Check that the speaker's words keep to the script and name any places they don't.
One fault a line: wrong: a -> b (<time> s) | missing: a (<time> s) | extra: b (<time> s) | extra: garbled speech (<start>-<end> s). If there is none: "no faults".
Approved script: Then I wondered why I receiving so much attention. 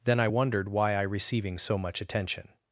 no faults